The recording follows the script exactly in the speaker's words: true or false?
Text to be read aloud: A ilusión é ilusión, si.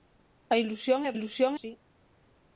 true